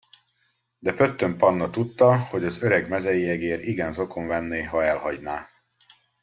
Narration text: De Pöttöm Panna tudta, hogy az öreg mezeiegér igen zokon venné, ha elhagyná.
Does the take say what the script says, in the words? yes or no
yes